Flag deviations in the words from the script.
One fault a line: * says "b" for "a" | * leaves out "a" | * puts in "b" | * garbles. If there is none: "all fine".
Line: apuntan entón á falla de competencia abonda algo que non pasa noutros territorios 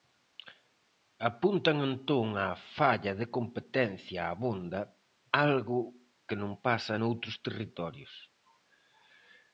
all fine